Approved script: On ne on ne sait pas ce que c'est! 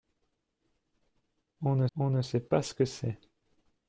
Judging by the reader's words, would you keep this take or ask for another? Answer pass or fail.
pass